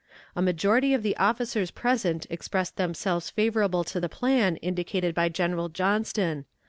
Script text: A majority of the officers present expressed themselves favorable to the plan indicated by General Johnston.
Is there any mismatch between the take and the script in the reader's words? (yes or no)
no